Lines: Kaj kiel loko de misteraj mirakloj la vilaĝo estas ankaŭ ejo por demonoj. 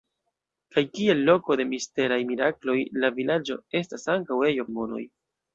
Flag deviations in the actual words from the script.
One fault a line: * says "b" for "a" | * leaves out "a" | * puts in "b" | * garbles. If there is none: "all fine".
* leaves out "por"